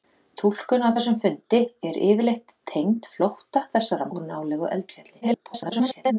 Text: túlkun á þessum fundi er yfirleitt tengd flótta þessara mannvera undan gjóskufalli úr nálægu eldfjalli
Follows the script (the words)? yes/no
no